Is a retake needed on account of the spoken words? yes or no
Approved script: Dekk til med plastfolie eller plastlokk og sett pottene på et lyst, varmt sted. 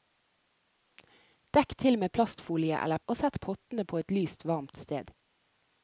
yes